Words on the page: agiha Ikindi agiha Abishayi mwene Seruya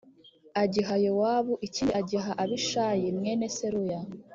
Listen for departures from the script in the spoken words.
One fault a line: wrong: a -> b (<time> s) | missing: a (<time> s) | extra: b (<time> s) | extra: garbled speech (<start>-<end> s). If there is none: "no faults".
extra: Yowabu (1.1 s)